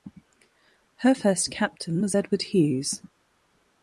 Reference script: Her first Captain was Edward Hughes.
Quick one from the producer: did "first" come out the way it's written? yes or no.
yes